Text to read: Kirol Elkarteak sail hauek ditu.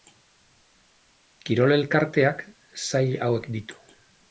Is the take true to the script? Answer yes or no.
yes